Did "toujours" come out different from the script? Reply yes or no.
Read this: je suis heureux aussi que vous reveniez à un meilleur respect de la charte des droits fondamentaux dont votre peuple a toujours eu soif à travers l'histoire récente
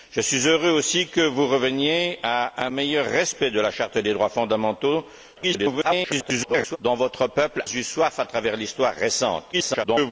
yes